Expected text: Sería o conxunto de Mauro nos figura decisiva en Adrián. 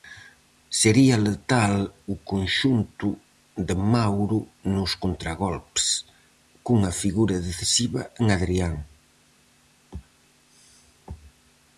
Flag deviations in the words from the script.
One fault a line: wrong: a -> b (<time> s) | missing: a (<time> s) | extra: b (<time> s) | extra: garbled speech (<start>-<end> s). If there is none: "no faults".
extra: letal (1.3 s)
extra: contragolpes cunha (5.0 s)